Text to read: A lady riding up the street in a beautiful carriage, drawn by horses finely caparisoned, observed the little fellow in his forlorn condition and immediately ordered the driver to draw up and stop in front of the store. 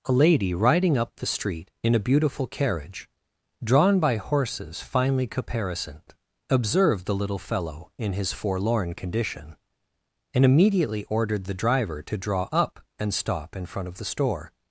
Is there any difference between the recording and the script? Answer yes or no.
no